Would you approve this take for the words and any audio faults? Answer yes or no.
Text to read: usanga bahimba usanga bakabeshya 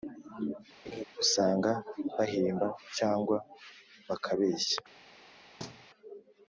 no